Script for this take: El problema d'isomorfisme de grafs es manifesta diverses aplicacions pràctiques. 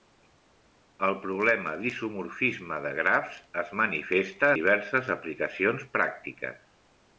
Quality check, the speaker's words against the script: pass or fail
pass